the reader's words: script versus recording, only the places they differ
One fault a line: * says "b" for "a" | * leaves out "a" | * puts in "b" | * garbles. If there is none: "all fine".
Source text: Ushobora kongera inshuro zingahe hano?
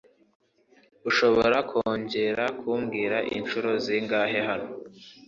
* puts in "kumbwira"